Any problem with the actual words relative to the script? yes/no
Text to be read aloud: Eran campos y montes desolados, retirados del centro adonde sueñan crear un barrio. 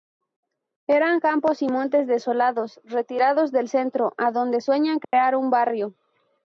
no